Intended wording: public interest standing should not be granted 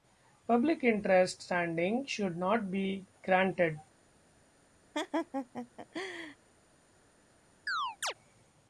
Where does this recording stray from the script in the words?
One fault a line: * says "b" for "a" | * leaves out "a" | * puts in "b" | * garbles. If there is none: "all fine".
all fine